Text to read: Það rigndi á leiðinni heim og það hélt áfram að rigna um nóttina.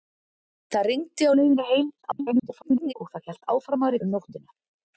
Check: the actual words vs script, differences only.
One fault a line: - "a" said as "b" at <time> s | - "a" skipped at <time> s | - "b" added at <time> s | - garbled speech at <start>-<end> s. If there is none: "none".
- garbled speech at 2.0-2.9 s
- "rigna" skipped at 4.0 s